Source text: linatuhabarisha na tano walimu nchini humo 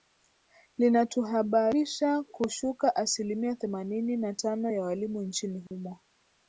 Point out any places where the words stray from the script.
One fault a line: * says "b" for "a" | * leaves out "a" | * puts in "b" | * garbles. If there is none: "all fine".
* puts in "kushuka asilimia themanini"
* puts in "ya"